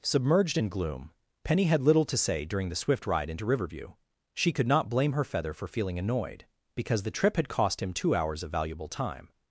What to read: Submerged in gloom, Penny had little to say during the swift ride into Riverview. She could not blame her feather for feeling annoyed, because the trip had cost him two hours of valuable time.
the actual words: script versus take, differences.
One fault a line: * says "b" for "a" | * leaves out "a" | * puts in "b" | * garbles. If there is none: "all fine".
all fine